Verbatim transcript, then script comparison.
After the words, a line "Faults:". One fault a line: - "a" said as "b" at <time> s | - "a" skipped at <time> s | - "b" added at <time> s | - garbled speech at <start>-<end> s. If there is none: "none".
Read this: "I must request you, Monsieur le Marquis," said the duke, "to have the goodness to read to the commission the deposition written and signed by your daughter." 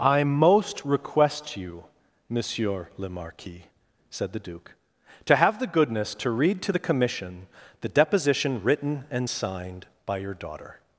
"I most request you, Monsieur le Marquis," said the duke, "to have the goodness to read to the commission the deposition written and signed by your daughter."
Faults:
- "must" said as "most" at 0.2 s